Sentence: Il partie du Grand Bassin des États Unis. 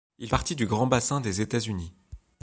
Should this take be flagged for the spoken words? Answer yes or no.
no